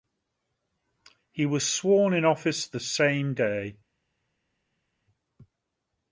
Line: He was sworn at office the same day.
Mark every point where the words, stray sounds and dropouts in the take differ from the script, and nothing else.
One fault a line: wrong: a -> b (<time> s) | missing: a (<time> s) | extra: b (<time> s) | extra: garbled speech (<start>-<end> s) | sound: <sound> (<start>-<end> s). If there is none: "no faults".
wrong: at -> in (2.1 s)